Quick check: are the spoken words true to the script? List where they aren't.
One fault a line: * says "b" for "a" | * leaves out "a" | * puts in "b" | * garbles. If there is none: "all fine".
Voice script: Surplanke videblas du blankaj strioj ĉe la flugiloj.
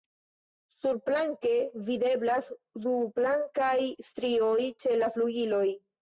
all fine